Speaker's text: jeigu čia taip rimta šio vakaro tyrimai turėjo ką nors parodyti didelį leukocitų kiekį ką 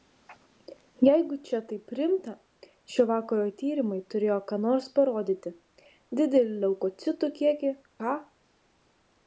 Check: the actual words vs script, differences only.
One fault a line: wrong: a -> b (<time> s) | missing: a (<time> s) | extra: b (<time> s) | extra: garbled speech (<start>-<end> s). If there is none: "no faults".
no faults